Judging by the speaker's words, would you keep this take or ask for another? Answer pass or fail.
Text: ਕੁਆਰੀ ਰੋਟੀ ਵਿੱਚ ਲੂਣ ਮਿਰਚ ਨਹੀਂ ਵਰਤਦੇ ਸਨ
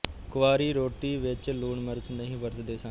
pass